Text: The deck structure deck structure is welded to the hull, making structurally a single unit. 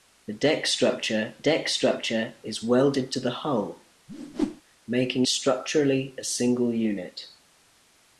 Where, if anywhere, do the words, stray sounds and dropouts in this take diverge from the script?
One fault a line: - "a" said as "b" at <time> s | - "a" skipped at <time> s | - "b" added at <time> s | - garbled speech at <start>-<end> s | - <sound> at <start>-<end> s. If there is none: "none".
- whoosh at 4.1-4.6 s